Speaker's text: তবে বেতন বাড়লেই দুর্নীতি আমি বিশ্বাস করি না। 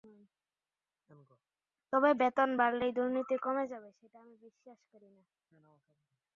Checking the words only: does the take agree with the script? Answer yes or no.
no